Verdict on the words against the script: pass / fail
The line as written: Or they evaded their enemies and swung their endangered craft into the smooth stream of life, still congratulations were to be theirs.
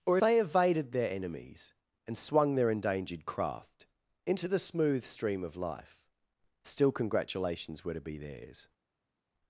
pass